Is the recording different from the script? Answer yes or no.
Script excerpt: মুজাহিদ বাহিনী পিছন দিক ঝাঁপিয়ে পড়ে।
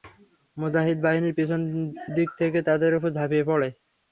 yes